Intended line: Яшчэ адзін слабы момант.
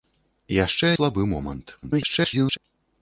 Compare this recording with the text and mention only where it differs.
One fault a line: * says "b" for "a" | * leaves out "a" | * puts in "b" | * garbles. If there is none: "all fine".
* leaves out "адзін"
* garbles